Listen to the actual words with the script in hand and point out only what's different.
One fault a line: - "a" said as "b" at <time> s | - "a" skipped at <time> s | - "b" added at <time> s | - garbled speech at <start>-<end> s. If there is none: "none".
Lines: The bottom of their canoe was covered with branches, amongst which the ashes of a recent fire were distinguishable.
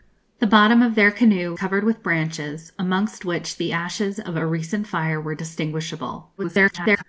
- "was" skipped at 1.5 s
- garbled speech at 6.4-7.0 s